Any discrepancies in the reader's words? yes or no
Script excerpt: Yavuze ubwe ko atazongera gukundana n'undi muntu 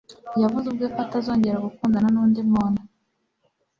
no